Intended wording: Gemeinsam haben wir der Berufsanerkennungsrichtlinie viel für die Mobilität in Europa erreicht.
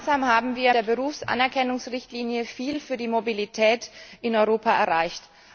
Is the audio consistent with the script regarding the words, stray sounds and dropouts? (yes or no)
yes